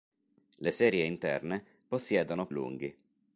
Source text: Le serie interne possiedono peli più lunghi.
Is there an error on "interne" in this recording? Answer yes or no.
no